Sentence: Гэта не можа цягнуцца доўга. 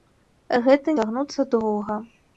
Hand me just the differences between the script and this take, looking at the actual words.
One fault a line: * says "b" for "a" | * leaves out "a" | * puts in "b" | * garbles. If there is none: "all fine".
* leaves out "не можа"